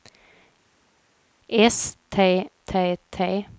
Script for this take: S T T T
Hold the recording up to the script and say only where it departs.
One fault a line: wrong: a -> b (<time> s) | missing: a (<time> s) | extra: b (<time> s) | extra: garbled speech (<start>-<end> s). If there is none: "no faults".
no faults